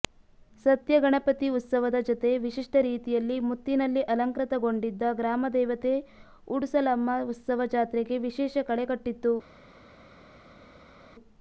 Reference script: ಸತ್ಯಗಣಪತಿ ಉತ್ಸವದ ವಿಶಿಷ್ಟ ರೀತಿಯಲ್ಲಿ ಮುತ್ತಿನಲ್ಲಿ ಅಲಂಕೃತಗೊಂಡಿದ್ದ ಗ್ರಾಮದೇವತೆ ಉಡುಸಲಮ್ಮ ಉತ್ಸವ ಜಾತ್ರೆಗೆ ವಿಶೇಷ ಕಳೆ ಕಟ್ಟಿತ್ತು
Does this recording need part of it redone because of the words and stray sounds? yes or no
yes